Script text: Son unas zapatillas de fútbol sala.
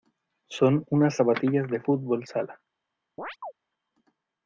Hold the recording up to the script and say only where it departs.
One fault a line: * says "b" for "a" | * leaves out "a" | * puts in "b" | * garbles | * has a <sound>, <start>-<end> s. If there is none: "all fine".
* has a chirp, 3.2-3.5 s